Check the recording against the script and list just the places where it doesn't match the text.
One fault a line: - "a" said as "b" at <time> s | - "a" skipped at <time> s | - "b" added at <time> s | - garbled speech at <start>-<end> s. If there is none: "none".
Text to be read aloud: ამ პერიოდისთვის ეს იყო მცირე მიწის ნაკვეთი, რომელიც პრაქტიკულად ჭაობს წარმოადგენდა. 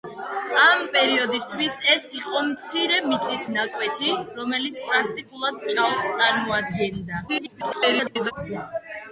- garbled speech at 7.3-8.3 s